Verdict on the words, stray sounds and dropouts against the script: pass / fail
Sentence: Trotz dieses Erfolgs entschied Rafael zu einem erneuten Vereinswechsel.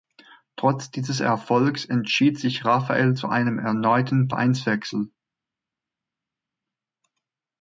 fail